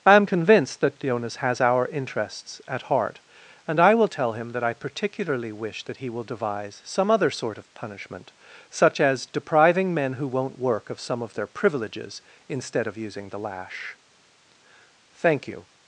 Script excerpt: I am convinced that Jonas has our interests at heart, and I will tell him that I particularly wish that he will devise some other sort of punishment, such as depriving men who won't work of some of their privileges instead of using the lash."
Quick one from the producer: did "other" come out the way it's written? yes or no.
yes